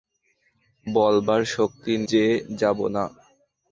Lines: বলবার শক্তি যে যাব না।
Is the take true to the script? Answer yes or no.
yes